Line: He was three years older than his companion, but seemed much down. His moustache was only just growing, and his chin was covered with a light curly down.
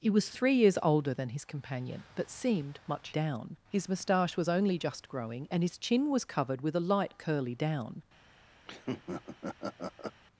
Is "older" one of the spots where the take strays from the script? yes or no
no